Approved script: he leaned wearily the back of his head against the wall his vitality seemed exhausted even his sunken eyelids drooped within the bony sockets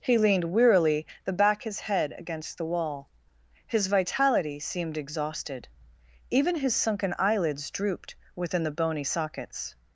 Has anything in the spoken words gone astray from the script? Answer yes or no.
yes